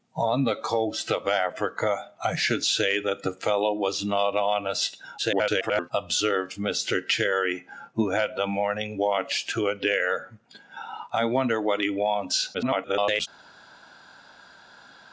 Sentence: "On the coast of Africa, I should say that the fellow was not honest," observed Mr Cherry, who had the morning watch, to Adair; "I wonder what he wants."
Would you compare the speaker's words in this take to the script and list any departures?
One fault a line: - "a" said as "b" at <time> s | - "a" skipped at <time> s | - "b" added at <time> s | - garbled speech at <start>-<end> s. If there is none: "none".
- garbled speech at 5.2-5.9 s
- garbled speech at 12.5-13.3 s